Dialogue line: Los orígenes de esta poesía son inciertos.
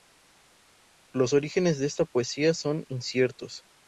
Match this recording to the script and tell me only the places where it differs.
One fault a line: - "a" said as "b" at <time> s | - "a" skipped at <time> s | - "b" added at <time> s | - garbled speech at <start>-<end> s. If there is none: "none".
none